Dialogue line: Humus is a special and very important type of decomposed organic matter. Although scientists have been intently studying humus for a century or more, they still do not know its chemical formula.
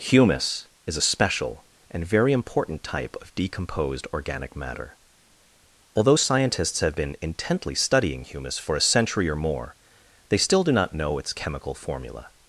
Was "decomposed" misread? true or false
false